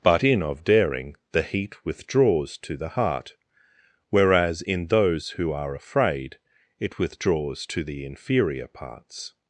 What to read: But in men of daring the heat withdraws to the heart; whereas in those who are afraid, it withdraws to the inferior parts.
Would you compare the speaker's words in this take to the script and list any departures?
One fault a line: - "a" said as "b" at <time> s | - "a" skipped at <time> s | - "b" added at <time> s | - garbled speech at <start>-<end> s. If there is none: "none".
- "men" skipped at 0.4 s